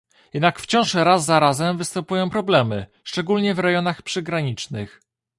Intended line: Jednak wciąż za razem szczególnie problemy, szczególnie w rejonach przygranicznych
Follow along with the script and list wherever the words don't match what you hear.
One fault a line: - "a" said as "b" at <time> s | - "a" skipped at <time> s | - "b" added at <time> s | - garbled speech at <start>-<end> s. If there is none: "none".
- "raz" added at 0.9 s
- "szczególnie" said as "występują" at 1.8 s